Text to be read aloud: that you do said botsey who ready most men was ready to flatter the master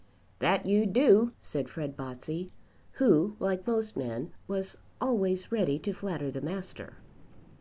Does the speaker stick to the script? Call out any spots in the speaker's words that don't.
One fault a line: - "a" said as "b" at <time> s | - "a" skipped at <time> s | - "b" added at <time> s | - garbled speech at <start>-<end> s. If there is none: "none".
- "fred" added at 1.7 s
- "ready" said as "like" at 3.4 s
- "always" added at 5.0 s